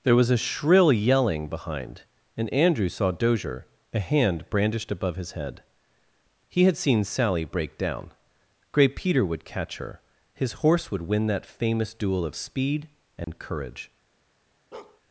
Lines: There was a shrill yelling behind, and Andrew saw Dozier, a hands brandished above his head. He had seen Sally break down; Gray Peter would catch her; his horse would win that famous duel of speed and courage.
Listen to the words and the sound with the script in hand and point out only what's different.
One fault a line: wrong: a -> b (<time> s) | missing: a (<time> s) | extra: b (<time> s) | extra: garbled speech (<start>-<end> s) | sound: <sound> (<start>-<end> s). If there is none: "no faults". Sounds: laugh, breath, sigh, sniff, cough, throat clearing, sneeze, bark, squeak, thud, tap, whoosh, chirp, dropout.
wrong: hands -> hand (4.0 s)
sound: dropout (13.2-13.3 s)
sound: bark (14.7-15.0 s)